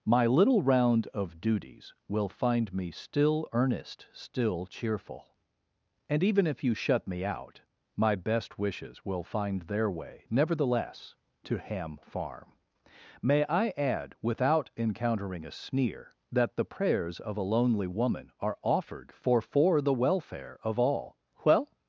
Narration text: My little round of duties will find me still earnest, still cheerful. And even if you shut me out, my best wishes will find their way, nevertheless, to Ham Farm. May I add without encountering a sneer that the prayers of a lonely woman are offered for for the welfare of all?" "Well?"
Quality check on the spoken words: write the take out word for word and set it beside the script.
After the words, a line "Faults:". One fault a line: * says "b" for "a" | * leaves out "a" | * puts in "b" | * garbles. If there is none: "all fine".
My little round of duties will find me still earnest, still cheerful. And even if you shut me out, my best wishes will find their way, nevertheless, to Ham Farm. May I add without encountering a sneer that the prayers of a lonely woman are offered for for the welfare of all?" "Well?"
Faults:
all fine